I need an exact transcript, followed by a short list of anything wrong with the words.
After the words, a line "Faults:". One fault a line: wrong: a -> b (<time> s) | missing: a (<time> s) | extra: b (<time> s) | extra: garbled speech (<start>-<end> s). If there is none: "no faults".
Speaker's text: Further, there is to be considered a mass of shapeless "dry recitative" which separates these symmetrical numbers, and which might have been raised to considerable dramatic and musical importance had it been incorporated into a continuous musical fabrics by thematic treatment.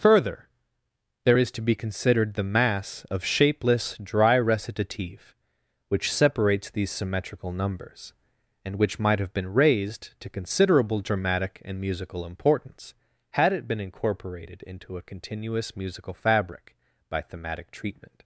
Further, there is to be considered the mass of shapeless "dry recitative" which separates these symmetrical numbers, and which might have been raised to considerable dramatic and musical importance had it been incorporated into a continuous musical fabric by thematic treatment.
Faults:
wrong: a -> the (2.4 s)
wrong: fabrics -> fabric (16.1 s)